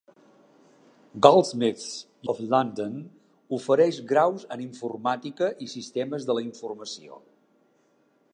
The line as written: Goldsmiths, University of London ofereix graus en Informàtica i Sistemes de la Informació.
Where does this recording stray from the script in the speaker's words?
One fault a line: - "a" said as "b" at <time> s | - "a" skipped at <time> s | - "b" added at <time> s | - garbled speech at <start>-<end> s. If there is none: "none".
- "University" skipped at 2.1 s